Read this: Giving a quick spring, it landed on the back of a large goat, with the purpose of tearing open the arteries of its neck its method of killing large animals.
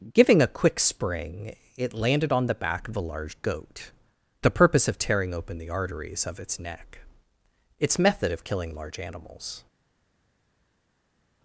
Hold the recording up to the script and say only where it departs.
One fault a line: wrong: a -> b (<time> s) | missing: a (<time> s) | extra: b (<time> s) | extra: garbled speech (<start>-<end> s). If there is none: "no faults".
missing: with (3.9 s)